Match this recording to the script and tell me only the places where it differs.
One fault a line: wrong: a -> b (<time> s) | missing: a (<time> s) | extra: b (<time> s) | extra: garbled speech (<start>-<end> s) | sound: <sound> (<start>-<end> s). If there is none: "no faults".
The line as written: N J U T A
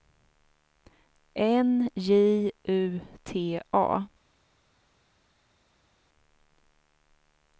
no faults